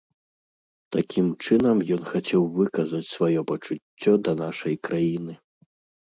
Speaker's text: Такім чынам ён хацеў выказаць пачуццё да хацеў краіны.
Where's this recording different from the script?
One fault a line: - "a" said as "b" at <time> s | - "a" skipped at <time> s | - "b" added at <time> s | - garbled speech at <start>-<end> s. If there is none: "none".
- "сваё" added at 3.1 s
- "хацеў" said as "нашай" at 4.4 s